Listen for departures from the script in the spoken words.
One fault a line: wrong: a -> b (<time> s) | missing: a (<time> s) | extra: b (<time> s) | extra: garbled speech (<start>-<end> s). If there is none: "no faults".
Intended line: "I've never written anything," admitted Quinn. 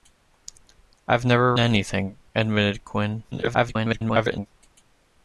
missing: written (1.6 s)
extra: garbled speech (3.3-4.5 s)